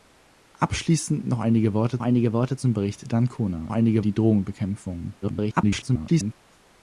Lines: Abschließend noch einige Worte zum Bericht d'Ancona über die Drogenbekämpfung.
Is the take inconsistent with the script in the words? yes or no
yes